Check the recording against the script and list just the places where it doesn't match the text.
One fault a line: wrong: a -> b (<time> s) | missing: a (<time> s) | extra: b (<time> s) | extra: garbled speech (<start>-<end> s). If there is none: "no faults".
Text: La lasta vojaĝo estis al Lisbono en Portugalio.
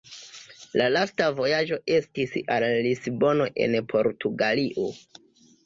no faults